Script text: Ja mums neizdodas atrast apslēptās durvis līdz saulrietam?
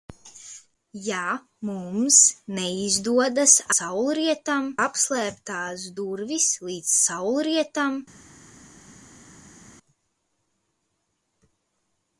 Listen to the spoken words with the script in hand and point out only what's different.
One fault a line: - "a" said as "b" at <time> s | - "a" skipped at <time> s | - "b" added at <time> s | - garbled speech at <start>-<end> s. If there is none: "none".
- "atrast" said as "saulrietam" at 3.7 s